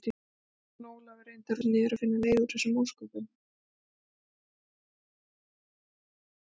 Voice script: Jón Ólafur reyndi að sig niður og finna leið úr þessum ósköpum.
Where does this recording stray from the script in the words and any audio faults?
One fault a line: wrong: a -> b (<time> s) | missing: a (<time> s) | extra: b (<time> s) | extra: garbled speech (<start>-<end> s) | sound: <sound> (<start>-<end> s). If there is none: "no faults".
no faults